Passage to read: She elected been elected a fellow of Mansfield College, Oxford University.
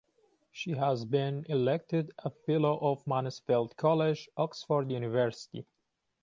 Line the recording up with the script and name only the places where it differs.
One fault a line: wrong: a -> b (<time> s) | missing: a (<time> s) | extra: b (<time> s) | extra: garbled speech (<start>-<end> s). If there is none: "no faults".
wrong: elected -> has (0.7 s)